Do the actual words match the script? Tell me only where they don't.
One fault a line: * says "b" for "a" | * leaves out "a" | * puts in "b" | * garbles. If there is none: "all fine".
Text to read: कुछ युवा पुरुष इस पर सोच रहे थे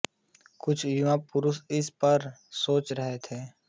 all fine